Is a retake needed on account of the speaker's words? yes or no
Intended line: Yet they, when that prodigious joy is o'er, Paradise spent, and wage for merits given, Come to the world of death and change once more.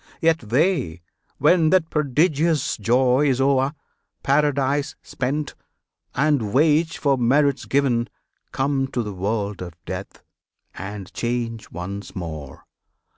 no